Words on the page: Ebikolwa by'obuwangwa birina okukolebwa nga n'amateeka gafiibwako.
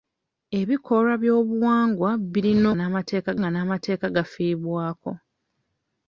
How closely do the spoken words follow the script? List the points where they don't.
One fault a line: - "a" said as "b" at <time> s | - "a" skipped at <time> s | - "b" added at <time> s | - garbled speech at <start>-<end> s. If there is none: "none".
- "okukolebwa" said as "n'amateeka" at 2.7 s